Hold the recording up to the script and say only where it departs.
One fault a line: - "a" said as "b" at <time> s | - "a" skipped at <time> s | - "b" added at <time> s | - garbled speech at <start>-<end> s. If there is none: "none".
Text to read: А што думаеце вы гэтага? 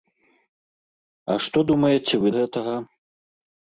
none